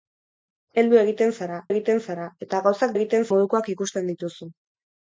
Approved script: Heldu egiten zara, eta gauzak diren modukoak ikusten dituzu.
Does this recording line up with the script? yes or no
no